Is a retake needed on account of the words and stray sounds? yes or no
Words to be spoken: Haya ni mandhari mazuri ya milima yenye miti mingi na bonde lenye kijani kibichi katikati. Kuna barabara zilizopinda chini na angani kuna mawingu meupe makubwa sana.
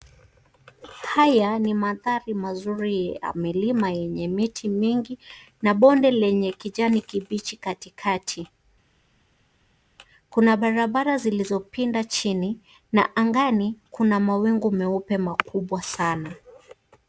no